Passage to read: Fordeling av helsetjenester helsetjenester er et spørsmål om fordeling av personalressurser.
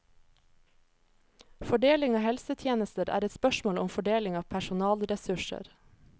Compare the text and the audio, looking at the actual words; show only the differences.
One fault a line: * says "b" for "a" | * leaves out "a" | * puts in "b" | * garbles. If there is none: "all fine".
* leaves out "helsetjenester"